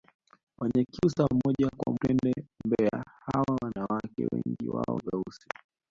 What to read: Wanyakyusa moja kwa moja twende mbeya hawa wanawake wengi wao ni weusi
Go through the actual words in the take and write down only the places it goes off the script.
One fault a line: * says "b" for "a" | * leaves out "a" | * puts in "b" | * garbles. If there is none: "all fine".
* leaves out "moja"
* leaves out "ni"